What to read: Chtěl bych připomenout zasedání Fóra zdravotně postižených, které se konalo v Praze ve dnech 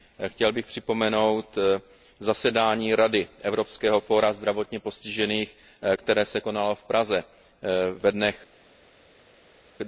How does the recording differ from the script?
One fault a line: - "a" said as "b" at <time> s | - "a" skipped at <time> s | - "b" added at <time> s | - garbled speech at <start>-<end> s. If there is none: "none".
- "Rady evropského" added at 3.0 s